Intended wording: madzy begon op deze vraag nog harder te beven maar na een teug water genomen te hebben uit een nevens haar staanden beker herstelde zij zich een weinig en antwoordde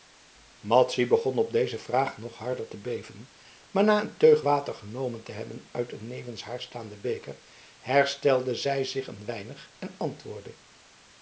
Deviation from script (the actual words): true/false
false